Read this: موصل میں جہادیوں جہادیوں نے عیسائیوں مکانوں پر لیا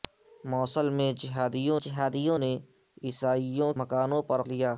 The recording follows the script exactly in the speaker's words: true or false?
true